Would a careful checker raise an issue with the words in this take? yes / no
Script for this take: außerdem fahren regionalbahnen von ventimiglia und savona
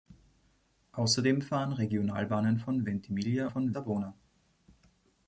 yes